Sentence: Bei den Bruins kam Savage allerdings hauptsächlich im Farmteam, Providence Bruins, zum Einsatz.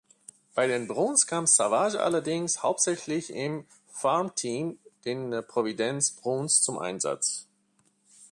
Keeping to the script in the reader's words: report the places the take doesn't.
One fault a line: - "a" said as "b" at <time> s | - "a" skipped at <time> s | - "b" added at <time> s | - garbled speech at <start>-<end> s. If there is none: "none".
- "den" added at 5.0 s